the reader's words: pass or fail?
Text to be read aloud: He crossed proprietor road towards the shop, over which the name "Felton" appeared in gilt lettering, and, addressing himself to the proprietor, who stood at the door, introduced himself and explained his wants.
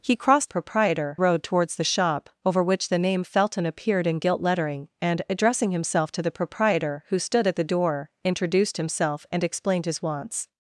pass